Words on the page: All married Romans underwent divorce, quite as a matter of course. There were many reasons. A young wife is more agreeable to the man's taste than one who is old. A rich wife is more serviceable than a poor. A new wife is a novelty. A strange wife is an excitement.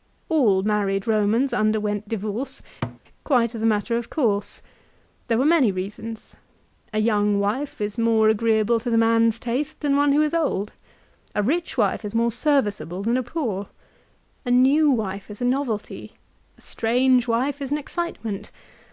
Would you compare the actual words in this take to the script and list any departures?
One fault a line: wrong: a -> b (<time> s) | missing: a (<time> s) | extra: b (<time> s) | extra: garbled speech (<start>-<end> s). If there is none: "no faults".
no faults